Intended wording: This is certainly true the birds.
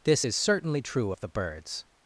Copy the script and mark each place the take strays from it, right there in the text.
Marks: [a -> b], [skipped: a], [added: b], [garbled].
This is certainly true [added: of] the birds.